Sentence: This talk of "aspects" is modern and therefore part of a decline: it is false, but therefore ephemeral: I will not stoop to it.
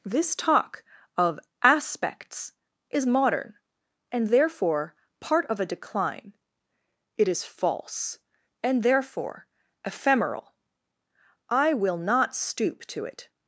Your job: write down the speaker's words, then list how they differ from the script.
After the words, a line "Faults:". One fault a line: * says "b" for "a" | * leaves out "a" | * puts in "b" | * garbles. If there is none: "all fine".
This talk of "aspects" is modern and therefore part of a decline: it is false, and therefore ephemeral: I will not stoop to it.
Faults:
* says "and" for "but"